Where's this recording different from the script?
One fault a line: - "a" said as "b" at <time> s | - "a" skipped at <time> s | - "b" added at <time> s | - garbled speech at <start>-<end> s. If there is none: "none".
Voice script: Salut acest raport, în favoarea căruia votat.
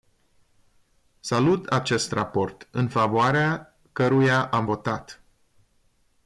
- "am" added at 4.5 s